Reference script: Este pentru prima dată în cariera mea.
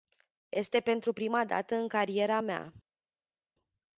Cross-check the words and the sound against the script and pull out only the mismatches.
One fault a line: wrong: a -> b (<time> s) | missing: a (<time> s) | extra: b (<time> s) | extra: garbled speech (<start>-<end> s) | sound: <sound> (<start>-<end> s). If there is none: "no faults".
no faults